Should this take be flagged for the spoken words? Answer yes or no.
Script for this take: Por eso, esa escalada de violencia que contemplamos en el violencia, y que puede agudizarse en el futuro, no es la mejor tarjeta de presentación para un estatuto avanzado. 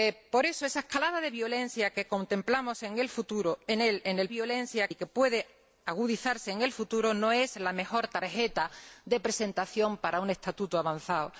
no